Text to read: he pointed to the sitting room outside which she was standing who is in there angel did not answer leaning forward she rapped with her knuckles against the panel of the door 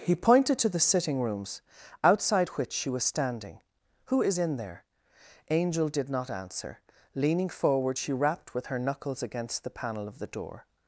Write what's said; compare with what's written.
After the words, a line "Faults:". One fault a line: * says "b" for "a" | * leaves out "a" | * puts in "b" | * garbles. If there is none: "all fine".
he pointed to the sitting rooms outside which she was standing who is in there angel did not answer leaning forward she rapped with her knuckles against the panel of the door
Faults:
* says "rooms" for "room"